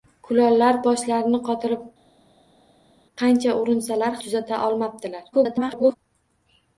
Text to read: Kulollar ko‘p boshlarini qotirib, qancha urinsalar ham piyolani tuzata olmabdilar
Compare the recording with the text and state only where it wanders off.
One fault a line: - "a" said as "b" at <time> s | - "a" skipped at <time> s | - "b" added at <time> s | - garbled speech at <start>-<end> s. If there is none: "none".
- "ko‘p" skipped at 0.8 s
- "ham piyolani" skipped at 4.2 s
- garbled speech at 5.3-6.0 s